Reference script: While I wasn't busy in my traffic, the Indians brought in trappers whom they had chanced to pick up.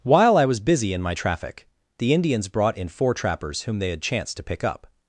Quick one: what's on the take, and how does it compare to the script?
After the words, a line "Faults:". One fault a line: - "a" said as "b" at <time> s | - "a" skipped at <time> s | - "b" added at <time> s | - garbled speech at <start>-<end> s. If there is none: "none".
While I was busy in my traffic, the Indians brought in four trappers whom they had chanced to pick up.
Faults:
- "wasn't" said as "was" at 0.5 s
- "four" added at 2.9 s